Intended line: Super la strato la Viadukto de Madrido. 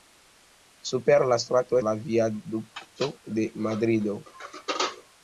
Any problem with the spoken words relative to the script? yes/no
no